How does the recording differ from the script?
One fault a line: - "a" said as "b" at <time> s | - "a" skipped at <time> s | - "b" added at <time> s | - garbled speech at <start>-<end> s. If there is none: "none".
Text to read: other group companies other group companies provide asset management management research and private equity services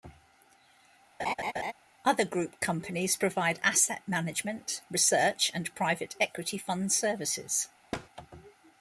- "other group companies" skipped at 3.2 s
- "management" skipped at 4.8 s
- "fund" added at 6.6 s